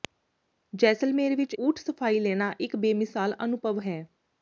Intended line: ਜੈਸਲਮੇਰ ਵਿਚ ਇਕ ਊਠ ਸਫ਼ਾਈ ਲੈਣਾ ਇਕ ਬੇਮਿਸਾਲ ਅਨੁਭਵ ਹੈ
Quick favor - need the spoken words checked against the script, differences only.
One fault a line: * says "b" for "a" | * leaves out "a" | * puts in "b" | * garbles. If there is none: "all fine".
* leaves out "ਇਕ"